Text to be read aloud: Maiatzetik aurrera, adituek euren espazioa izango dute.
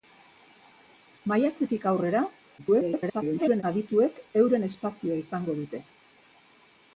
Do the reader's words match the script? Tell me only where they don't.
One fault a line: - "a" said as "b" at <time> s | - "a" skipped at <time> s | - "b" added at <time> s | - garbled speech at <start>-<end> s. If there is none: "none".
- garbled speech at 2.6-3.6 s